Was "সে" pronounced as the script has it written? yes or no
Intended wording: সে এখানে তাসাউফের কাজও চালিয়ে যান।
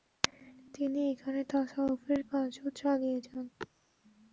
no